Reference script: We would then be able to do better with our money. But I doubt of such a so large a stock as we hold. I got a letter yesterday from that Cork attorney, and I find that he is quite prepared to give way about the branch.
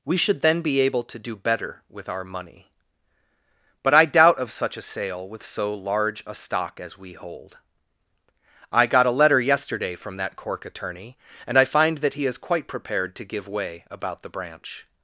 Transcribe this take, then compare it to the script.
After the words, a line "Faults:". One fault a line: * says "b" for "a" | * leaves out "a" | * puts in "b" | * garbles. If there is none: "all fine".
We should then be able to do better with our money. But I doubt of such a sale with so large a stock as we hold. I got a letter yesterday from that Cork attorney, and I find that he is quite prepared to give way about the branch.
Faults:
* says "should" for "would"
* puts in "sale with"